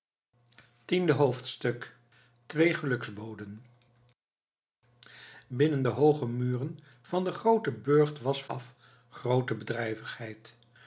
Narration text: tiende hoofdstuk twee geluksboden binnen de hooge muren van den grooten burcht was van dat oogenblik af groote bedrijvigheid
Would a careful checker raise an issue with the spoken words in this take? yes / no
yes